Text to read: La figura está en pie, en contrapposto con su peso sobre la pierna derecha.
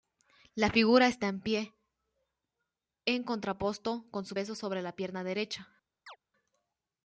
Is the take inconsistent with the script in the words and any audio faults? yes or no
yes